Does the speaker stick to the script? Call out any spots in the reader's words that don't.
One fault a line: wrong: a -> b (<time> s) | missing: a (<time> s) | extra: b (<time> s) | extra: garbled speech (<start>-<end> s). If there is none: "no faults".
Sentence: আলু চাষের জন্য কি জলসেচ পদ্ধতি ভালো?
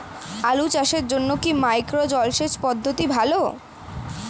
extra: মাইক্রো (1.6 s)